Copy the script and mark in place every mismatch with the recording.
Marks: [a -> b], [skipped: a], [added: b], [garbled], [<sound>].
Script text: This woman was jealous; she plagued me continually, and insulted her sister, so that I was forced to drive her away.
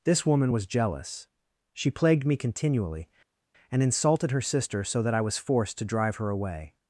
This woman was jealous; she plagued me continually, and insulted her sister, so that I was forced to drive her away.